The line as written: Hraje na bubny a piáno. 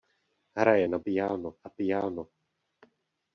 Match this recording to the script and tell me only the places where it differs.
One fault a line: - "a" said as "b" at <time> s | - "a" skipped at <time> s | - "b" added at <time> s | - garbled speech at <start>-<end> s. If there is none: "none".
- "bubny" said as "piáno" at 1.0 s